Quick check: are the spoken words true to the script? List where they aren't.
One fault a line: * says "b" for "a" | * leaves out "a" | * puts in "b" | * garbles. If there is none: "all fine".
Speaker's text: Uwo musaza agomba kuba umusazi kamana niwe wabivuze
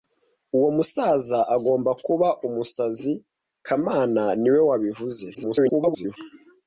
* garbles